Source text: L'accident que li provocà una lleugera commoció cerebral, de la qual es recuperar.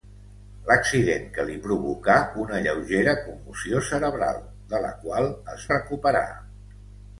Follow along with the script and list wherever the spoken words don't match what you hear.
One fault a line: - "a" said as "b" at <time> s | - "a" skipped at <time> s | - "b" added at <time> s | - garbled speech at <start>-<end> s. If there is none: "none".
none